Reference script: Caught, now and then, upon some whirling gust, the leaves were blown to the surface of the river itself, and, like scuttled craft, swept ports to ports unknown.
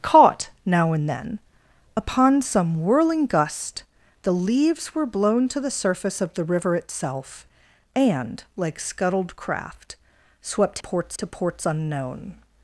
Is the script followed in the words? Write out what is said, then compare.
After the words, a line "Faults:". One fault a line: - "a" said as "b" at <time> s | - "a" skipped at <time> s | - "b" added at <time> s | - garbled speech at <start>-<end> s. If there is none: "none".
Caught, now and then, upon some whirling gust, the leaves were blown to the surface of the river itself, and, like scuttled craft, swept ports to ports unknown.
Faults:
none